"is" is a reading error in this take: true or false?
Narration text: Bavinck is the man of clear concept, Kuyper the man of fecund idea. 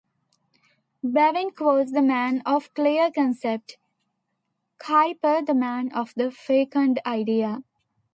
true